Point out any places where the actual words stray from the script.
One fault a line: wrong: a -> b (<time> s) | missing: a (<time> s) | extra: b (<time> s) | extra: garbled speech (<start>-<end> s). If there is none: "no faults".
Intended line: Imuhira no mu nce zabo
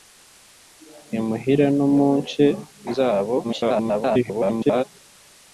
extra: garbled speech (3.4-4.8 s)